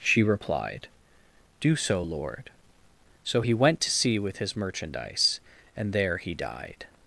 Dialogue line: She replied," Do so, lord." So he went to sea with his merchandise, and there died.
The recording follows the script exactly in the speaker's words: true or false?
false